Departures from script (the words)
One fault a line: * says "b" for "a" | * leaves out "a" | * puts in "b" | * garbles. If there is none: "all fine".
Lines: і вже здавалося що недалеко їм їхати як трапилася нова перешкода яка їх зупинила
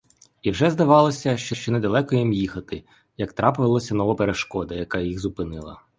* puts in "що"